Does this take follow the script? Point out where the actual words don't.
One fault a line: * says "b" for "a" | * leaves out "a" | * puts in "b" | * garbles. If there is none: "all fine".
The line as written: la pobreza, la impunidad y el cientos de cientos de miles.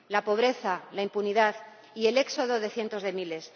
* says "éxodo" for "cientos"